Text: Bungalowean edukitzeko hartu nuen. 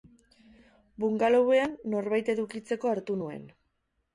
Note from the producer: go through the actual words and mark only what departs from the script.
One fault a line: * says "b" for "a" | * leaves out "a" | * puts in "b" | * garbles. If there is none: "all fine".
* puts in "norbait"